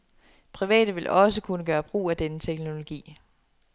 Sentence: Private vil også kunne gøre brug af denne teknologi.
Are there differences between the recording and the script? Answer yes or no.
no